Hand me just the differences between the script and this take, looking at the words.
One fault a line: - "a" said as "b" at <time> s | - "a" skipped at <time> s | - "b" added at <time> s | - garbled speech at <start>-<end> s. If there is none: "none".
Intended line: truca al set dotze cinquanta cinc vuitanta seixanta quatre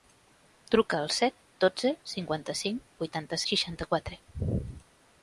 none